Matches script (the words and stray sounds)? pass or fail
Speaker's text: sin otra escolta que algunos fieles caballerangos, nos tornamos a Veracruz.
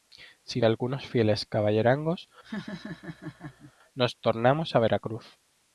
fail